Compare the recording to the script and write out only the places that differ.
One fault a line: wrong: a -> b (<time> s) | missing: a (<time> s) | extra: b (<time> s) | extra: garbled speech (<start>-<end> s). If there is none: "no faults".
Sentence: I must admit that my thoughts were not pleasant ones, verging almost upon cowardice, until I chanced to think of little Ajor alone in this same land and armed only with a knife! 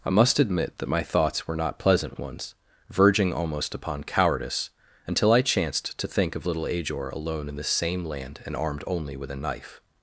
no faults